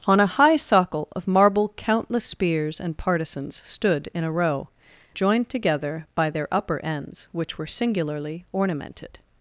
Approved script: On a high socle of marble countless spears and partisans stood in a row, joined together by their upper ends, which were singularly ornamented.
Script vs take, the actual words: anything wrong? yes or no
no